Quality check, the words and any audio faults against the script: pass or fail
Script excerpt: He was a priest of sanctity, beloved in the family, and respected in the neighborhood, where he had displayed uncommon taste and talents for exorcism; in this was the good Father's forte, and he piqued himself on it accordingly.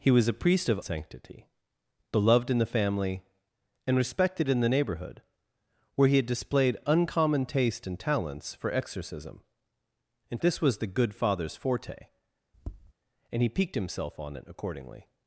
fail